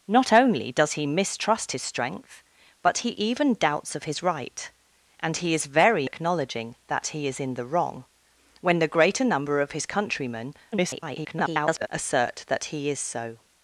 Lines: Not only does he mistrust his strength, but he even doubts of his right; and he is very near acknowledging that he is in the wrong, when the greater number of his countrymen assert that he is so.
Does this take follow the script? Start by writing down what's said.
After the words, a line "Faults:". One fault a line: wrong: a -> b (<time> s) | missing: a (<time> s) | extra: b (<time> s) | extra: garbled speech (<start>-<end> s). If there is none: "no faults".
Not only does he mistrust his strength, but he even doubts of his right; and he is very acknowledging that he is in the wrong, when the greater number of his countrymen [garbled] assert that he is so.
Faults:
missing: near (6.1 s)
extra: garbled speech (10.7-11.9 s)